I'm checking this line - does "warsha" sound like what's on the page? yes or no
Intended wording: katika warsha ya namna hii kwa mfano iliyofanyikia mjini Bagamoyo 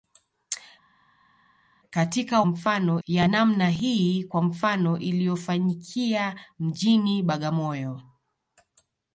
no